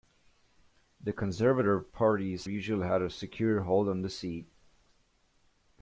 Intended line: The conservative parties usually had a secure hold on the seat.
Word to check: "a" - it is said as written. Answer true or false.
true